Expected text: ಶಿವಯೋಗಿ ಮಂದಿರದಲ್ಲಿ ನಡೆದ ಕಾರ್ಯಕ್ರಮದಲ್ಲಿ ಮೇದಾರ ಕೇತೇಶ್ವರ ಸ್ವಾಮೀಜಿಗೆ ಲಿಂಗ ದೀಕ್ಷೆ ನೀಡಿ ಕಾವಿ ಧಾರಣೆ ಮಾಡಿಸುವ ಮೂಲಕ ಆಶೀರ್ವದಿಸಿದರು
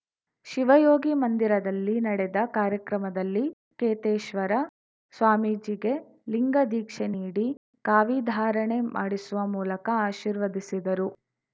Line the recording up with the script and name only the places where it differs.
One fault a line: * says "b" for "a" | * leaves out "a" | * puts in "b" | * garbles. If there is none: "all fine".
* leaves out "ಮೇದಾರ"